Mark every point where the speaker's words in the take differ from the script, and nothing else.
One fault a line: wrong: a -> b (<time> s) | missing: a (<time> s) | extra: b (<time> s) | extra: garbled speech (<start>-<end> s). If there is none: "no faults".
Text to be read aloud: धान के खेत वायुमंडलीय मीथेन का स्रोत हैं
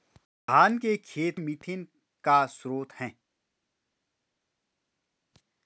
missing: वायुमंडलीय (1.4 s)